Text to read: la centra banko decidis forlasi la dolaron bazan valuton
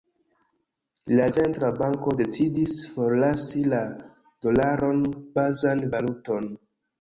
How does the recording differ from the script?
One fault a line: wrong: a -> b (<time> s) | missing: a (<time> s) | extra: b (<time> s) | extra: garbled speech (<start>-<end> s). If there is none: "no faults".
no faults